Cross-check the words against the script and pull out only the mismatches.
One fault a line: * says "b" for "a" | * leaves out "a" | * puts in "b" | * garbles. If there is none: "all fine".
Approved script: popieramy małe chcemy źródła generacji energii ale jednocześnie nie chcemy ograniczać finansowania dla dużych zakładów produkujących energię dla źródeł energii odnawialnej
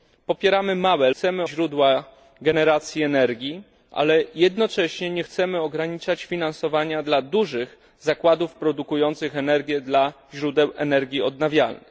all fine